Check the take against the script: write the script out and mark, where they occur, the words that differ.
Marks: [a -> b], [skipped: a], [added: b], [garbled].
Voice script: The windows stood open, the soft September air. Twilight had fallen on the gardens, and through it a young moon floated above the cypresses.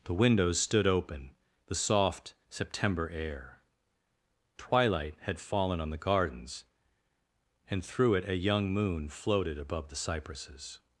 The windows stood open, the soft September air. Twilight had fallen on the gardens, and through it a young moon floated above the cypresses.